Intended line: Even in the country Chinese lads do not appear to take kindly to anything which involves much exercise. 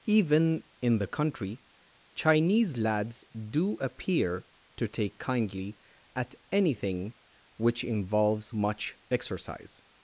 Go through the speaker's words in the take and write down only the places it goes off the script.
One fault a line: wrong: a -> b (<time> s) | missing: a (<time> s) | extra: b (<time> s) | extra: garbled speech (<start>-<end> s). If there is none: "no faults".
missing: not (3.8 s)
wrong: to -> at (6.2 s)